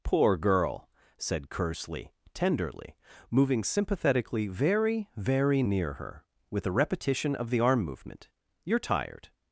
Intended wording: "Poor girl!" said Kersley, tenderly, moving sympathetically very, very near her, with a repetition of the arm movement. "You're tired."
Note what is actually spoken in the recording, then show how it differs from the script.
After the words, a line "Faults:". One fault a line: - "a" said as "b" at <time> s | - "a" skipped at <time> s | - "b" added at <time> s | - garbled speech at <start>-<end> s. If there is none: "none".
"Poor girl!" said Kersley, tenderly, moving sympathetically very, very near her, with a repetition of the arm movement. "You're tired."
Faults:
none